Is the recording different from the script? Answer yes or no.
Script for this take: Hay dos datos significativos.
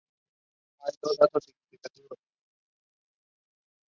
no